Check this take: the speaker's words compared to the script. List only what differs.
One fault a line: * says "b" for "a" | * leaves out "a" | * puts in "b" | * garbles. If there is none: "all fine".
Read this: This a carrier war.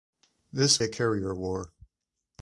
all fine